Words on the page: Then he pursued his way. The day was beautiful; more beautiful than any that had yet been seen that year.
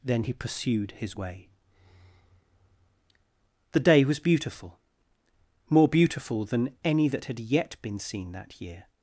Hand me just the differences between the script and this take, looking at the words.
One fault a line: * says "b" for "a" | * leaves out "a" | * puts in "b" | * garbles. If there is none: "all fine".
all fine